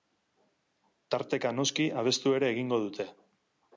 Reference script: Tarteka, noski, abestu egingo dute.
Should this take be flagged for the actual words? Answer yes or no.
yes